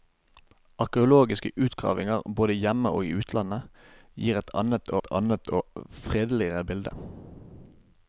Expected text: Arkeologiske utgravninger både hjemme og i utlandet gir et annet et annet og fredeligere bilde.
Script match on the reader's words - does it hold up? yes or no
yes